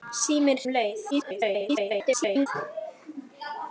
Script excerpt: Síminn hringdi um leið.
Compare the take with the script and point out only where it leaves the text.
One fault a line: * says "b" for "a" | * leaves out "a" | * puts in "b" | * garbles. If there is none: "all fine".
* leaves out "hringdi"
* garbles